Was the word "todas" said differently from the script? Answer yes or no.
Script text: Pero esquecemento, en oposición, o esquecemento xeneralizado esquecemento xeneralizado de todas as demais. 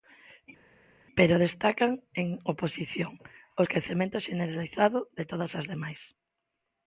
no